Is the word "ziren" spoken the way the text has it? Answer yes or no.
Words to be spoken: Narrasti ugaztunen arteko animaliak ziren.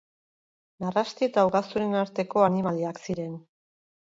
yes